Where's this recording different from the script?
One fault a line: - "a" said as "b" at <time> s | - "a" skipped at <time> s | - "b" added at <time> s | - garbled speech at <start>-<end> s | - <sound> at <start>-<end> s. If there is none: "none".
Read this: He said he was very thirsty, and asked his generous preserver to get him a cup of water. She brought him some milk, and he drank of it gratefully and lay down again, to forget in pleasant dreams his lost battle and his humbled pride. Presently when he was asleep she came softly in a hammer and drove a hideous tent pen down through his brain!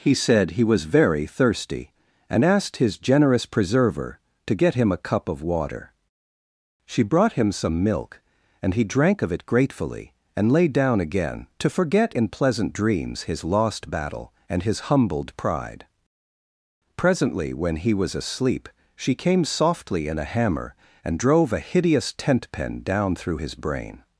none